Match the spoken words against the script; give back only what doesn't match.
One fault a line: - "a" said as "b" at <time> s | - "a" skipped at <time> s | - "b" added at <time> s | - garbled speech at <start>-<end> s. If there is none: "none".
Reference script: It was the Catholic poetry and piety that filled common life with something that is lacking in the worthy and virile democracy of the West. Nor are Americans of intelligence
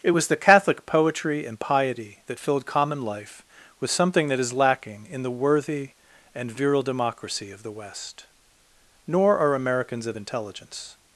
none